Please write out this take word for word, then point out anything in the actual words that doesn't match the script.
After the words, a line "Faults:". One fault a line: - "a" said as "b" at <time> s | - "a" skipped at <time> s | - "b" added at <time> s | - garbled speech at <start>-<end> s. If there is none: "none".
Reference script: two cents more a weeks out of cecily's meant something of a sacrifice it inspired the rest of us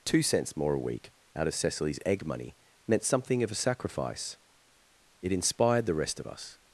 two cents more a week out of cecily's egg money meant something of a sacrifice it inspired the rest of us
Faults:
- "weeks" said as "week" at 0.8 s
- "egg money" added at 2.1 s